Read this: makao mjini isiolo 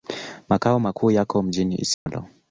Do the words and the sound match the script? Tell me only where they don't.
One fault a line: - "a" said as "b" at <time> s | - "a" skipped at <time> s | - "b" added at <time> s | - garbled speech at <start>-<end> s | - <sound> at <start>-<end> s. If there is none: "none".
- "makuu yako" added at 0.8 s
- dropout at 1.9-2.1 s